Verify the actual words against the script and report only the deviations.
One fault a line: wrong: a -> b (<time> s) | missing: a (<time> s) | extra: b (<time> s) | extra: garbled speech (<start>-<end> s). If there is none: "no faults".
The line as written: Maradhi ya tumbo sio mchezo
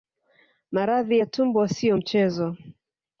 no faults